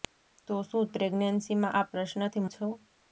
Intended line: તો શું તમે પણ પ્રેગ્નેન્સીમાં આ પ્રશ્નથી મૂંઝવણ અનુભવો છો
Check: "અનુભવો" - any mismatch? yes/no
yes